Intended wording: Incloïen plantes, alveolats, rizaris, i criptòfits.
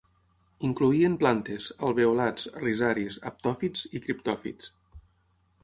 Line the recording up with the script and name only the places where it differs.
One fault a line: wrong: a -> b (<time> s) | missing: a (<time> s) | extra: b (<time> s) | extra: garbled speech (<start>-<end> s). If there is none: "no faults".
extra: haptòfits (3.3 s)